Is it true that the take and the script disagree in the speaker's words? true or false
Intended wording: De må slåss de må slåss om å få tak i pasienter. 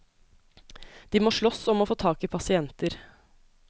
true